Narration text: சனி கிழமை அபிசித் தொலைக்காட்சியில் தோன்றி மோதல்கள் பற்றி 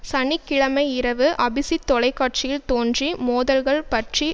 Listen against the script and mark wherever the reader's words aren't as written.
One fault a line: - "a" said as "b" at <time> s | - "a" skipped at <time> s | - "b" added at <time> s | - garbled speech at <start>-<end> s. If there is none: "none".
- "இரவு" added at 0.9 s